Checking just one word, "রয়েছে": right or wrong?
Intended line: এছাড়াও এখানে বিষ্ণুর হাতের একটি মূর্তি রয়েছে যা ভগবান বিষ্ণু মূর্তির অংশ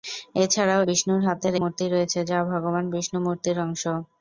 right